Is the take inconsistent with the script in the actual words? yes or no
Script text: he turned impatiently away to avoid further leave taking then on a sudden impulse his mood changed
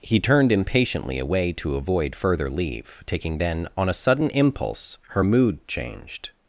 yes